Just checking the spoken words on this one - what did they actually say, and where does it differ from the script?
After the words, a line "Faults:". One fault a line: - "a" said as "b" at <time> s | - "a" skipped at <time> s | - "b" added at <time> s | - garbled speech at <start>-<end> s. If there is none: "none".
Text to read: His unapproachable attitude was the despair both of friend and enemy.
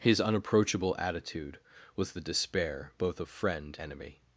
His unapproachable attitude was the despair both of friend enemy.
Faults:
- "and" skipped at 3.8 s